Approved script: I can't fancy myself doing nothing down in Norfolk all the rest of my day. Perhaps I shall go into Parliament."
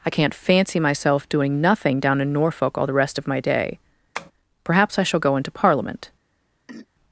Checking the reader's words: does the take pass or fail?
pass